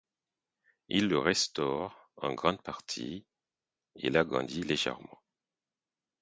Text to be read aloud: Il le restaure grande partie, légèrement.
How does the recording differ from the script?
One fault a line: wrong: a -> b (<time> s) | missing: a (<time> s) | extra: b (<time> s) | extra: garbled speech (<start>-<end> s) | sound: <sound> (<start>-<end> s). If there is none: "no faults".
extra: en (2.1 s)
extra: et l'agrandit (4.0 s)